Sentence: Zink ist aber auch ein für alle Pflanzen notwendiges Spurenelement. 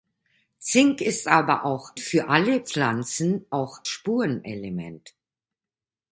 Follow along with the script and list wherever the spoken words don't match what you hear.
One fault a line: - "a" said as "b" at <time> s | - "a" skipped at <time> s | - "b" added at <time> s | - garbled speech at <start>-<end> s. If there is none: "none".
- "ein" skipped at 1.9 s
- "notwendiges" said as "auch" at 3.5 s